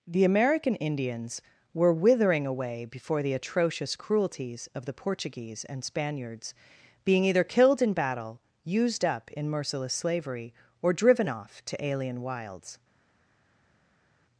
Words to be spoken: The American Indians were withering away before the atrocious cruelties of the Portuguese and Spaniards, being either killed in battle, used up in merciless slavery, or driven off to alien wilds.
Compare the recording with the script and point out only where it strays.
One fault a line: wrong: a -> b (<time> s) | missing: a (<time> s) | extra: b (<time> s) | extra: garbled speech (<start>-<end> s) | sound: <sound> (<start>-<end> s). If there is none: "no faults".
no faults